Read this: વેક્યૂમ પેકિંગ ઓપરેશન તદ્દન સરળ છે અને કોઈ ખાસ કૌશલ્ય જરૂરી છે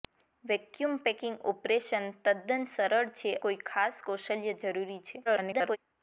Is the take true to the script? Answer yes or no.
no